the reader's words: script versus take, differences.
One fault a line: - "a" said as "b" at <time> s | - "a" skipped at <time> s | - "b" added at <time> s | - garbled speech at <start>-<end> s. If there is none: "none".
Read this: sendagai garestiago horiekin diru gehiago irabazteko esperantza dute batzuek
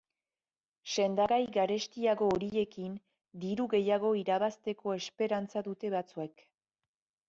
none